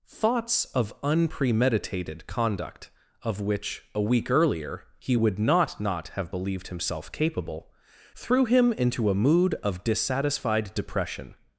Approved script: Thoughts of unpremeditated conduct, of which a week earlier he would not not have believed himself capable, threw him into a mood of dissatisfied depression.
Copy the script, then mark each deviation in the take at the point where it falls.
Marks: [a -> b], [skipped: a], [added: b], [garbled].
Thoughts of unpremeditated conduct, of which a week earlier he would not not have believed himself capable, threw him into a mood of dissatisfied depression.